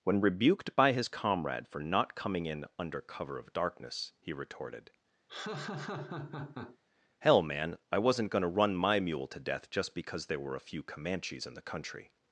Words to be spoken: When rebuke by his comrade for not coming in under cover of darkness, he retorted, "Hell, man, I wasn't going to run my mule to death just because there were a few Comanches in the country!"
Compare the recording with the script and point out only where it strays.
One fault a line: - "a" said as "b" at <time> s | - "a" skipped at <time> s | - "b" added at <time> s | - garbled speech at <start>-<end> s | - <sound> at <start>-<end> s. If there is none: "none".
- "rebuke" said as "rebuked" at 0.2 s
- laugh at 5.3-6.8 s